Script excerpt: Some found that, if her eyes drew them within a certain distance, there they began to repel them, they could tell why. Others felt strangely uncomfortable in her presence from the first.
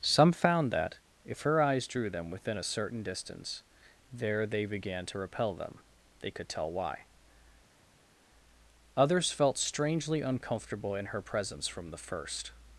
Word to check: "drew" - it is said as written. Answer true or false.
true